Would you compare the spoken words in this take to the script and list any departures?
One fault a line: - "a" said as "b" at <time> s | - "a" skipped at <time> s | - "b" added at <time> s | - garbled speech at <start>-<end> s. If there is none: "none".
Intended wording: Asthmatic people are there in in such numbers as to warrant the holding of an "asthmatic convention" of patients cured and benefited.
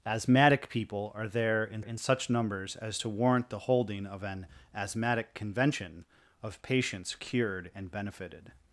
none